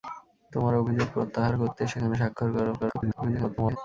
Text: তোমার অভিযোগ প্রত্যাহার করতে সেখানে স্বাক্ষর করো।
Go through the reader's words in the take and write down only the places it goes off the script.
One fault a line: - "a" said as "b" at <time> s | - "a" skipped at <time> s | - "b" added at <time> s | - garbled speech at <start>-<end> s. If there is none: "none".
- garbled speech at 2.8-3.8 s